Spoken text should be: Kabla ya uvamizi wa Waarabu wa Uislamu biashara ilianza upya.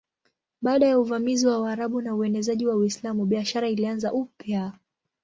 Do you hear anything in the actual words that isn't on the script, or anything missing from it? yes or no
yes